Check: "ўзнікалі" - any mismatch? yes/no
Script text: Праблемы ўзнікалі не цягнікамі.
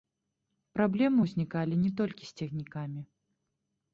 no